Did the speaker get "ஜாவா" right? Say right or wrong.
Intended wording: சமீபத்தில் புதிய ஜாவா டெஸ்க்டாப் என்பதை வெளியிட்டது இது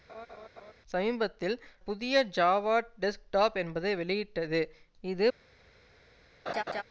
right